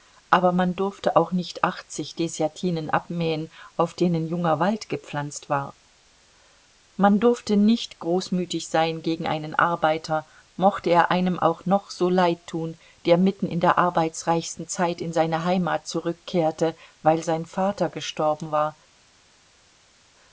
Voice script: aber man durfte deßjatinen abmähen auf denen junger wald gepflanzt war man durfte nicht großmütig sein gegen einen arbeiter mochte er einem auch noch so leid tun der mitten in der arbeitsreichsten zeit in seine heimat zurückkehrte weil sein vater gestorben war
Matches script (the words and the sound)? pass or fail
fail